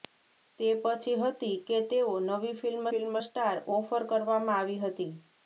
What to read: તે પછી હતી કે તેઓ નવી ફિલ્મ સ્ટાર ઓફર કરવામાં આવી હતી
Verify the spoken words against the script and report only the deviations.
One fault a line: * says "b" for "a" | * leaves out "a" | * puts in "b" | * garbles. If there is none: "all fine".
* puts in "ફિલ્મ"